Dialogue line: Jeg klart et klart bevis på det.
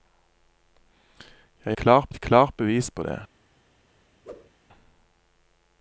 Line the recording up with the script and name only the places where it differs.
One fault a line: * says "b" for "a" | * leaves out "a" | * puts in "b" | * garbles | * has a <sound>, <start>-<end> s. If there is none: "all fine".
* has a whoosh, 4.2-4.5 s